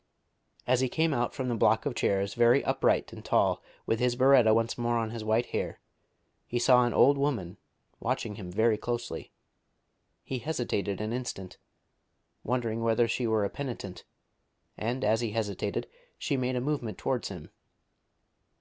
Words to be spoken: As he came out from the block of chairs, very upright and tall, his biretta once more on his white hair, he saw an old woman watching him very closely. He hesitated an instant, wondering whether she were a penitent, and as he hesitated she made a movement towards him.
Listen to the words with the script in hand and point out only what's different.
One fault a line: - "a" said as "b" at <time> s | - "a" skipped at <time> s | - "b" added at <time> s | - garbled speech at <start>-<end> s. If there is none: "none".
- "with" added at 3.9 s